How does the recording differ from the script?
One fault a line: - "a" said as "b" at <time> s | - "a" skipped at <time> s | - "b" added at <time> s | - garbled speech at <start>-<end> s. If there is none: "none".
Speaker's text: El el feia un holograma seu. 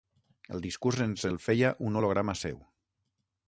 - "discurs ens" added at 0.7 s